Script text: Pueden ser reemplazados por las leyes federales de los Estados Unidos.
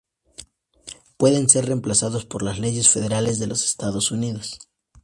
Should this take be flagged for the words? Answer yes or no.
no